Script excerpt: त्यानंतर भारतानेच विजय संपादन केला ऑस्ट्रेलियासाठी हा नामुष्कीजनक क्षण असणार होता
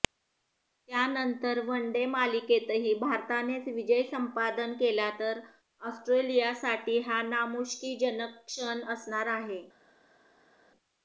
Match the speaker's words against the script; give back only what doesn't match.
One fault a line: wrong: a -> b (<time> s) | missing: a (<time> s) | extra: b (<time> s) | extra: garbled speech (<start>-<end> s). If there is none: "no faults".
extra: वनडे मालिकेतही (1.6 s)
extra: तर (5.2 s)
wrong: होता -> आहे (9.4 s)